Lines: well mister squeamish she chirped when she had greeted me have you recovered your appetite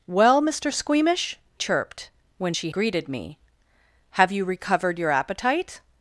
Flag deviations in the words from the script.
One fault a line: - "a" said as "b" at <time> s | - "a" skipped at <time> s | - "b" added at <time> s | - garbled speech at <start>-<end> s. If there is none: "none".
- "she" skipped at 1.4 s
- "had" skipped at 2.7 s